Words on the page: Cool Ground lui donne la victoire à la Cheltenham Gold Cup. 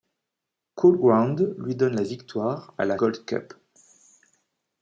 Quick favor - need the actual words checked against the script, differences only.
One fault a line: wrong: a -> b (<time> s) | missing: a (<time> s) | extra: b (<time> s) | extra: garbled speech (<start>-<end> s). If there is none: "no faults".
missing: Cheltenham (3.0 s)